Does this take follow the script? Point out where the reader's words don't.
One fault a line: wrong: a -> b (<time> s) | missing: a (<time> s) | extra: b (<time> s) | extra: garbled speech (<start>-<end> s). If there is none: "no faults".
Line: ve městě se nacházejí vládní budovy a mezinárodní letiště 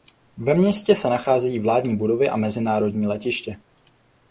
no faults